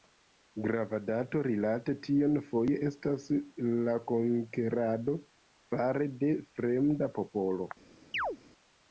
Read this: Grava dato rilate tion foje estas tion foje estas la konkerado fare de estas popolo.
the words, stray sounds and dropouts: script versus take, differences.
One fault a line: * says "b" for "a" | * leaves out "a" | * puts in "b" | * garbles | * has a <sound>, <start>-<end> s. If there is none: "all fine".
* leaves out "tion foje estas"
* says "fremda" for "estas"
* has a chirp, 8.1-8.4 s